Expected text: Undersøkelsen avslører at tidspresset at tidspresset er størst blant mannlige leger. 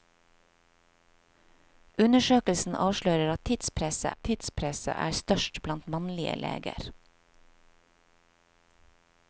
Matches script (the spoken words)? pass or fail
pass